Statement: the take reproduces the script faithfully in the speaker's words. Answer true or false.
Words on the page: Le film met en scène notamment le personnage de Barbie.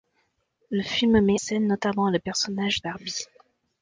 false